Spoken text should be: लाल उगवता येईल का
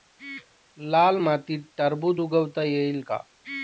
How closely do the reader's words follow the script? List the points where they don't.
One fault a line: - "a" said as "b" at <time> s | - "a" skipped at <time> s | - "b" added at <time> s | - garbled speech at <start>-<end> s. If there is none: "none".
- "मातीत टरबूज" added at 1.2 s